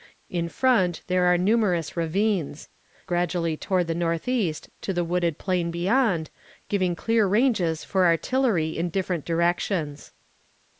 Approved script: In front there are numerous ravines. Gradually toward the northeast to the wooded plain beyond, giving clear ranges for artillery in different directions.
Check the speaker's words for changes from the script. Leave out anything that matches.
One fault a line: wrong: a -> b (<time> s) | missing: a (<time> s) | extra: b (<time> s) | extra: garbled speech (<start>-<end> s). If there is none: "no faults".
no faults